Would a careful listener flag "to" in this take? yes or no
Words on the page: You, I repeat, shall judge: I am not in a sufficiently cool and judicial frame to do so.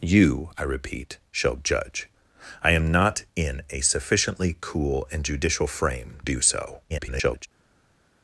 yes